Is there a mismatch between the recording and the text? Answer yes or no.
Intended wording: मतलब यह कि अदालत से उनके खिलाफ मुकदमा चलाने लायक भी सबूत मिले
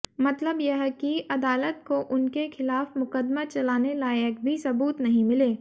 yes